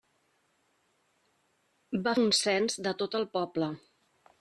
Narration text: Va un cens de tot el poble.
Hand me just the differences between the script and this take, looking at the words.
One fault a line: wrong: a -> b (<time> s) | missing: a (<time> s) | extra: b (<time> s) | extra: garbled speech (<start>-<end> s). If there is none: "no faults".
no faults